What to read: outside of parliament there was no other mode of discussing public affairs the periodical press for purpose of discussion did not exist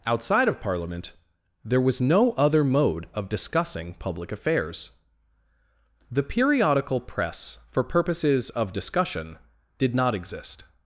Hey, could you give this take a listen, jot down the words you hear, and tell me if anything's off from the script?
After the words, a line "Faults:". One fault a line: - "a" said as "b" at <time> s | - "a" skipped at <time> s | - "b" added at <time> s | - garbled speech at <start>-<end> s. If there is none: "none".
outside of parliament there was no other mode of discussing public affairs the periodical press for purposes of discussion did not exist
Faults:
- "purpose" said as "purposes" at 7.8 s